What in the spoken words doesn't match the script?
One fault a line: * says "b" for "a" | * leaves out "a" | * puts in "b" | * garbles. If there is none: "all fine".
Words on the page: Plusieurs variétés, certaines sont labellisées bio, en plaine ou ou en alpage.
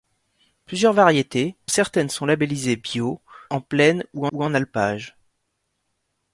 all fine